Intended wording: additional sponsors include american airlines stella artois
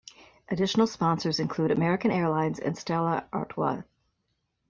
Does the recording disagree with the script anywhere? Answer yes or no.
yes